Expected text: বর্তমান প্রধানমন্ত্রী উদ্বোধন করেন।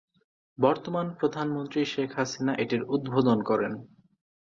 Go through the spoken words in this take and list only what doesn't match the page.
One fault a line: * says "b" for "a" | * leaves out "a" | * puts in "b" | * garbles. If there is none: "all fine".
* puts in "শেখ হাসিনা এটির"